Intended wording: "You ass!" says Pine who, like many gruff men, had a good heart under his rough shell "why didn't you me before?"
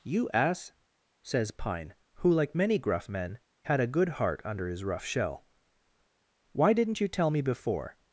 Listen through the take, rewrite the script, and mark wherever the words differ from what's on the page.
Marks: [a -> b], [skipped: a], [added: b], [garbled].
"You ass!" says Pine who, like many gruff men, had a good heart under his rough shell "why didn't you [added: tell] me before?"